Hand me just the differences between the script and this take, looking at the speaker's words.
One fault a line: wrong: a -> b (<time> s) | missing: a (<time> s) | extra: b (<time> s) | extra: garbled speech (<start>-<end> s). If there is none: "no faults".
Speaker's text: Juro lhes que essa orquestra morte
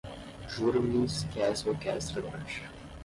no faults